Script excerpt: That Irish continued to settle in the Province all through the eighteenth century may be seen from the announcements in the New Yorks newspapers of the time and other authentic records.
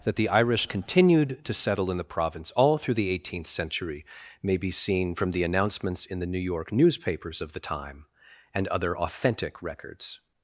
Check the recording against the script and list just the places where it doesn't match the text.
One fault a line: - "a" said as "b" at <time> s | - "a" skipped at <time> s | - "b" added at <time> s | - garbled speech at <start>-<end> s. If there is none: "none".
- "the" added at 0.1 s
- "Yorks" said as "York" at 6.4 s